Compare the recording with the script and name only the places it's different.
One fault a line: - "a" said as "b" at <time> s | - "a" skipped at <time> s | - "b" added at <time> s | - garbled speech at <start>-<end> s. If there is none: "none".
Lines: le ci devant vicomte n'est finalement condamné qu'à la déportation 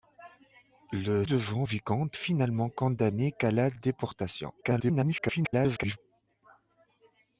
- "ci" skipped at 1.2 s
- "n'est" skipped at 2.2 s
- garbled speech at 4.6-6.0 s